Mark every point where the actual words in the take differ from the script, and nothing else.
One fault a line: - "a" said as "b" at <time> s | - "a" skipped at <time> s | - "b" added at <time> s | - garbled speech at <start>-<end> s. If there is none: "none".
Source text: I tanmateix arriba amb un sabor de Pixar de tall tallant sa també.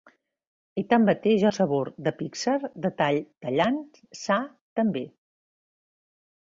- "arriba amb" skipped at 1.4 s